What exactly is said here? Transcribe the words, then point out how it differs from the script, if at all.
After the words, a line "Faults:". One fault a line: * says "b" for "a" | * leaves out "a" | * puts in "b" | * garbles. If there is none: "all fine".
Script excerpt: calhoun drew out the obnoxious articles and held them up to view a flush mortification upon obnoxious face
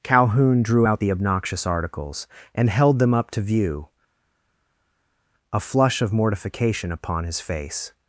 calhoun drew out the obnoxious articles and held them up to view a flush of mortification upon his face
Faults:
* puts in "of"
* says "his" for "obnoxious"